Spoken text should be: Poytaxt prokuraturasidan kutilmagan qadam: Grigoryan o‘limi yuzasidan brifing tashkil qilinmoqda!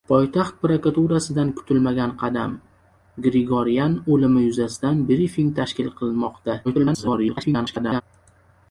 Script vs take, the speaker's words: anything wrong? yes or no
yes